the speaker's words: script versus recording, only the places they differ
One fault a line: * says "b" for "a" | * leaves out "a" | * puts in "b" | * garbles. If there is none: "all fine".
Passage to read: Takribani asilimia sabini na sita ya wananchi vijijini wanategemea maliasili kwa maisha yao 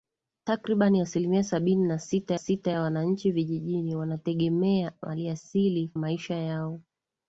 * puts in "sita"
* leaves out "kwa"